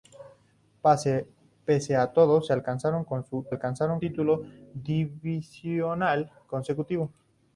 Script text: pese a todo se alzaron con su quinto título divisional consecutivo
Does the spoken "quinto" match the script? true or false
false